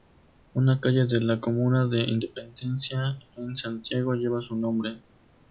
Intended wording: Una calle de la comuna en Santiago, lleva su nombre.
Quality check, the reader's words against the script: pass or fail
fail